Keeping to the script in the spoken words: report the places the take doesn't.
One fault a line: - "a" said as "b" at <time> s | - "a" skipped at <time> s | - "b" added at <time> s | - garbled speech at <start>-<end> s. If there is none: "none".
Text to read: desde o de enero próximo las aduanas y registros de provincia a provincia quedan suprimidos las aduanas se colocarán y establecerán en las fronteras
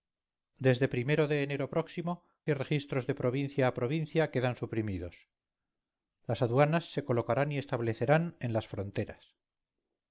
- "las aduanas" skipped at 2.1 s